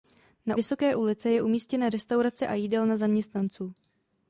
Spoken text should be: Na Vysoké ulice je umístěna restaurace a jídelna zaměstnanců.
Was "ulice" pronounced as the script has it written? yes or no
yes